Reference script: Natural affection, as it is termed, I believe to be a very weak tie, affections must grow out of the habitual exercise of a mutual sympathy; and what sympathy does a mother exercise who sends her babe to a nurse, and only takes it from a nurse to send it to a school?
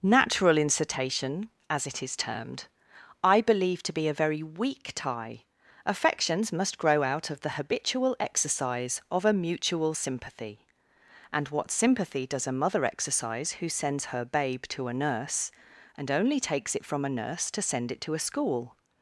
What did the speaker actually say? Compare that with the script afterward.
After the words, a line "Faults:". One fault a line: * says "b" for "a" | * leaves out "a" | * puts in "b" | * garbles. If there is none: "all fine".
Natural incitation, as it is termed, I believe to be a very weak tie, affections must grow out of the habitual exercise of a mutual sympathy; and what sympathy does a mother exercise who sends her babe to a nurse, and only takes it from a nurse to send it to a school?
Faults:
* says "incitation" for "affection"